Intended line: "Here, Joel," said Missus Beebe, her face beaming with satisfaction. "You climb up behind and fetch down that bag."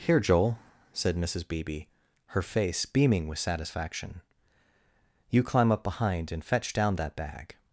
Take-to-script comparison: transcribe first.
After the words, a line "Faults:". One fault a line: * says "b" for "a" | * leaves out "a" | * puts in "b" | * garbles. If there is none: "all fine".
"Here, Joel," said Missus Beebe, her face beaming with satisfaction. "You climb up behind and fetch down that bag."
Faults:
all fine